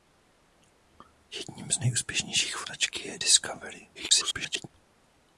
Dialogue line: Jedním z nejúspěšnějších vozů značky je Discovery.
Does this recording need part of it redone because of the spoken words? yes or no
yes